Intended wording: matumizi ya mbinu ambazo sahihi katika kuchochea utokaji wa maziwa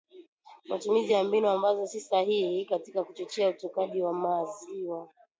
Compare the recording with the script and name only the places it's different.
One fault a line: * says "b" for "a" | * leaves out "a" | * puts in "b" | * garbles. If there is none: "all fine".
* puts in "si"